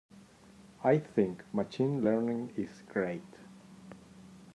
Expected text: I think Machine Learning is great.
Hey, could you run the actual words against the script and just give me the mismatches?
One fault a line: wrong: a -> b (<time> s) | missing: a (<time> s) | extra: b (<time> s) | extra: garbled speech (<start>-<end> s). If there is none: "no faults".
no faults